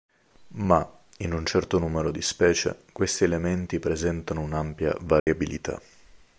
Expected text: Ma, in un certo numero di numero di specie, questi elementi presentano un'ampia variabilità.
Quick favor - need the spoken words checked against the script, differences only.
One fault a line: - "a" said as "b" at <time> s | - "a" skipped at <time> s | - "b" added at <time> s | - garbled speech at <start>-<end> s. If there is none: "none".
- "numero di" skipped at 2.2 s